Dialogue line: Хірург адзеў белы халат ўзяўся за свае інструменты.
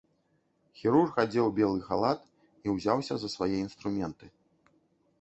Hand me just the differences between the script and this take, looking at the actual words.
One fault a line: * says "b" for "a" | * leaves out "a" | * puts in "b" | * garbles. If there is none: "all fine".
* puts in "і"